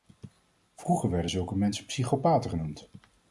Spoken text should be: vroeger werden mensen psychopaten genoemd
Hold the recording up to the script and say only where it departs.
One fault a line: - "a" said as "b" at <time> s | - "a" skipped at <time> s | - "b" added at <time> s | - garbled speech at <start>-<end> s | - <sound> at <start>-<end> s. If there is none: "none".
- "zulke" added at 1.3 s